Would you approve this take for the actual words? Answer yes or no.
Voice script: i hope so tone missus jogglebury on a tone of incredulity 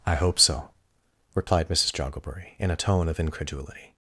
no